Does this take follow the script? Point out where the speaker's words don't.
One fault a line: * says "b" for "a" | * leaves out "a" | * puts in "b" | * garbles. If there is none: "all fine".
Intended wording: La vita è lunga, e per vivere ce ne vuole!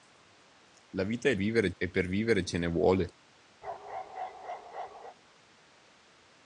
* says "vivere" for "lunga"